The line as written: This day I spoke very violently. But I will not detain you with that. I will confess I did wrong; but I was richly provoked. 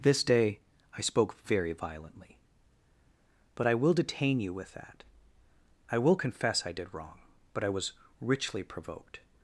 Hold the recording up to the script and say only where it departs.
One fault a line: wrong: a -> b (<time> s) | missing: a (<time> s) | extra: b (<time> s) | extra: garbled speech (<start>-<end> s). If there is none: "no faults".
missing: not (3.9 s)